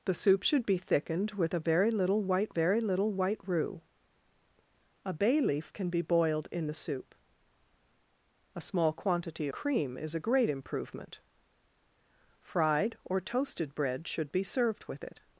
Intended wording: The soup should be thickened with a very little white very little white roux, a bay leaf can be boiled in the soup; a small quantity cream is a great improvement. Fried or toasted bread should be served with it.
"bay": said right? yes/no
yes